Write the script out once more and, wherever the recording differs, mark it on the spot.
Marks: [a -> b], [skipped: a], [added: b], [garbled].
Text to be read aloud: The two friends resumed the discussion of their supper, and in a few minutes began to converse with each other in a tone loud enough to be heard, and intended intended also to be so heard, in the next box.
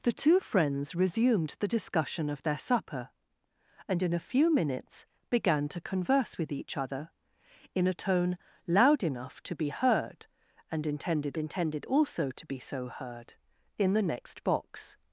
The two friends resumed the discussion of their supper, and in a few minutes began to converse with each other in a tone loud enough to be heard, and intended intended also to be so heard, in the next box.